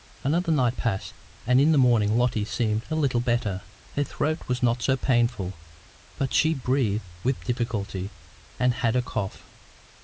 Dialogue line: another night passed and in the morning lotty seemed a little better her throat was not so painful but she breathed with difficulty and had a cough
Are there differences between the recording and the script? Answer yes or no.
no